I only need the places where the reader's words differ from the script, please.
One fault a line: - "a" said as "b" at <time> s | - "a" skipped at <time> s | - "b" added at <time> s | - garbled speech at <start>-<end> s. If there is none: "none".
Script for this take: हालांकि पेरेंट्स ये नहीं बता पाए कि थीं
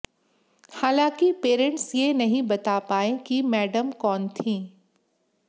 - "मैडम कौन" added at 3.4 s